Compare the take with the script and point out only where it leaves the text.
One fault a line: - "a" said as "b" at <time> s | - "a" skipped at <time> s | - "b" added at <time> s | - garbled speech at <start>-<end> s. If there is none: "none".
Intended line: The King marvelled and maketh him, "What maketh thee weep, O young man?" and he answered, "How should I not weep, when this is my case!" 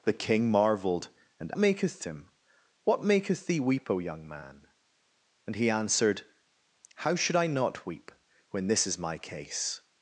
none